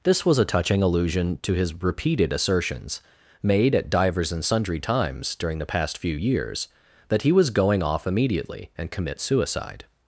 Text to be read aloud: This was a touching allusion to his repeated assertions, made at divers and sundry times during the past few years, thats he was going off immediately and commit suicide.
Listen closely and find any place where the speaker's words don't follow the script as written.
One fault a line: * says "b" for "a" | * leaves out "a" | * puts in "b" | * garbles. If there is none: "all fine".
* says "that" for "thats"